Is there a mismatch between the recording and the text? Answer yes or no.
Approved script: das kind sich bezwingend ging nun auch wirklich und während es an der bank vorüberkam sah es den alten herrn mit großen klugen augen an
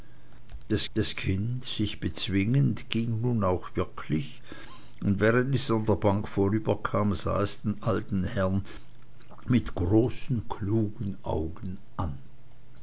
yes